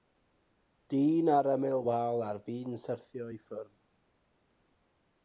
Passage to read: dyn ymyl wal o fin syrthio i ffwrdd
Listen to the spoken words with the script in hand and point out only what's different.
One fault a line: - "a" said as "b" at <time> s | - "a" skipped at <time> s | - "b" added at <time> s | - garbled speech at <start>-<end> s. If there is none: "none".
- "ar" added at 1.4 s
- "o" said as "ar" at 2.3 s